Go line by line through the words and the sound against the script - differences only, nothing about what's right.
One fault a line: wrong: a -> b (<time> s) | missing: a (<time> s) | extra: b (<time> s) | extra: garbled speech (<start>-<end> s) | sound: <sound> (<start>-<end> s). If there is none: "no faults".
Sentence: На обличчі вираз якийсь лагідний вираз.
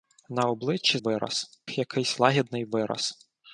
no faults